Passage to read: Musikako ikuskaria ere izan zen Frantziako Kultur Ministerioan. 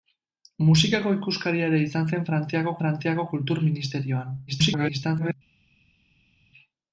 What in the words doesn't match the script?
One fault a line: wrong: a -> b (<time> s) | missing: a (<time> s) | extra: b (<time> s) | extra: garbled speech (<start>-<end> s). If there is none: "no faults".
extra: Frantziako (2.8 s)
extra: garbled speech (4.5-5.3 s)